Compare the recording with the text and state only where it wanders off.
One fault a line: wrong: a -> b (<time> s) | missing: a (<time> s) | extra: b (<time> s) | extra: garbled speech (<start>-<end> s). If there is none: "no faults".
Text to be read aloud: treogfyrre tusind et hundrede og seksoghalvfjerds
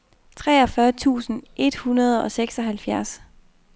no faults